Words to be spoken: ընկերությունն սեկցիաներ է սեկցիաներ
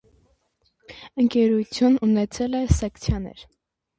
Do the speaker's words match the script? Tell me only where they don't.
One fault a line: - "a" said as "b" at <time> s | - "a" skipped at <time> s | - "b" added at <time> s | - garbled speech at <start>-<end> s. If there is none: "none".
- "սեկցիաներ" said as "ունեցել" at 2.1 s